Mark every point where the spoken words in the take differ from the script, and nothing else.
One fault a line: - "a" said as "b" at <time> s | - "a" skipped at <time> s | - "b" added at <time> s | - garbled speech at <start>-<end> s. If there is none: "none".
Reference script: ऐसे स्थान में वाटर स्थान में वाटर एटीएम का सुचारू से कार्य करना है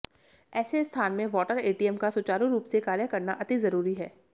- "स्थान में वाटर" skipped at 1.6 s
- "रूप" added at 2.5 s
- "अति जरूरी" added at 3.4 s